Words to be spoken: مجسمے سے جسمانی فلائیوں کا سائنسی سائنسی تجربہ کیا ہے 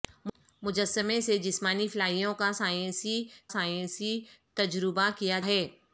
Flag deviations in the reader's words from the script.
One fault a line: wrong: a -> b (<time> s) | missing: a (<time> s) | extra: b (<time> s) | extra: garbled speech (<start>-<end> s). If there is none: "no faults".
no faults